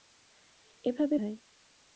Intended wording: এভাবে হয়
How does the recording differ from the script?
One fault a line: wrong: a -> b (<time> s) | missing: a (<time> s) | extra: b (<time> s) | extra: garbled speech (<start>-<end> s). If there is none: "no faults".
no faults